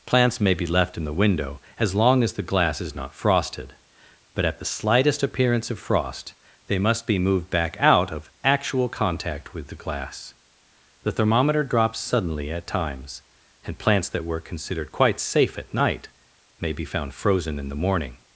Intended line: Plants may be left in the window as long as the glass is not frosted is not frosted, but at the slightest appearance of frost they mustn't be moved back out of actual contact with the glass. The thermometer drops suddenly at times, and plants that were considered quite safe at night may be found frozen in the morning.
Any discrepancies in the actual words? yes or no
yes